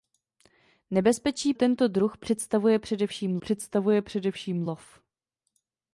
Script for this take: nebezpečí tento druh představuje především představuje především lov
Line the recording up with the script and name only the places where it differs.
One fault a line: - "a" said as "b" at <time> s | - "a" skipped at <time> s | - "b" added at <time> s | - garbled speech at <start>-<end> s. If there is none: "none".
none